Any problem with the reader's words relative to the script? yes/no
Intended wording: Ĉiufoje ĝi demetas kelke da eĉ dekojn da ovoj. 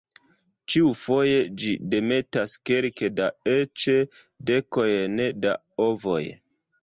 no